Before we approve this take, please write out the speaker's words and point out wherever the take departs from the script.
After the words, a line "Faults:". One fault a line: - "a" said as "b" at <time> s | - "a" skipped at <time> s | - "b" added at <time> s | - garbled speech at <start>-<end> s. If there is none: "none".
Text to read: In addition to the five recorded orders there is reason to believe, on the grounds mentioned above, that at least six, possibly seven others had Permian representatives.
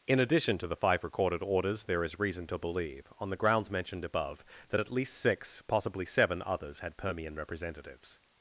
In addition to the five recorded orders there is reason to believe, on the grounds mentioned above, that at least six, possibly seven others had Permian representatives.
Faults:
none